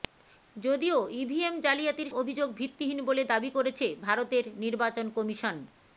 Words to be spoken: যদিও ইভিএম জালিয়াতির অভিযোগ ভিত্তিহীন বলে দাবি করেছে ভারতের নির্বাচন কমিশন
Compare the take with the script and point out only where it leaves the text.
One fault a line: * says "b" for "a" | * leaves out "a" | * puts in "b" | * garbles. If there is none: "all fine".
all fine